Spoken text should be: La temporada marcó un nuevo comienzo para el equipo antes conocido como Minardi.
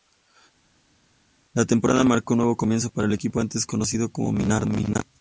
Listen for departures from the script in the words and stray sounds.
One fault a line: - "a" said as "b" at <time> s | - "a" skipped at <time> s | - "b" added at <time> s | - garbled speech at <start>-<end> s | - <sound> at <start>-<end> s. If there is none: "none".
none